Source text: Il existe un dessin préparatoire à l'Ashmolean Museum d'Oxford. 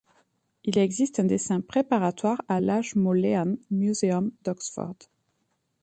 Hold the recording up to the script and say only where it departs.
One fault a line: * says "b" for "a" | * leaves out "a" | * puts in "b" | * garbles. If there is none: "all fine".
all fine